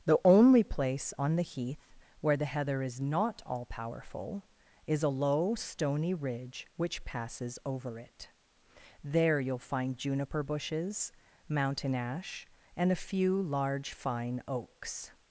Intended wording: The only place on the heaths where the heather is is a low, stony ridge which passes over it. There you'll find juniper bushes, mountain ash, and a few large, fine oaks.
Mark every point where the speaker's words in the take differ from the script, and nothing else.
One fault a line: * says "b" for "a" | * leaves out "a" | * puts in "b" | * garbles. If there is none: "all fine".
* says "heath" for "heaths"
* puts in "not all powerful"